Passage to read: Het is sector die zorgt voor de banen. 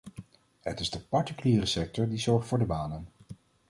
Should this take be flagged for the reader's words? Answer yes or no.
yes